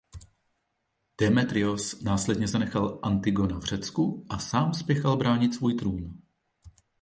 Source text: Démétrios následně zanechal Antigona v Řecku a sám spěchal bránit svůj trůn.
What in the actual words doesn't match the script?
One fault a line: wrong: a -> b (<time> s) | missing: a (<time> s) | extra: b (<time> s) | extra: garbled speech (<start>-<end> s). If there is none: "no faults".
no faults